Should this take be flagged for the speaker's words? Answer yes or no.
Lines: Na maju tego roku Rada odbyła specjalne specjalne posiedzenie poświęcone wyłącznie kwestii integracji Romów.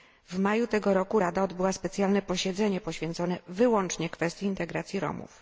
yes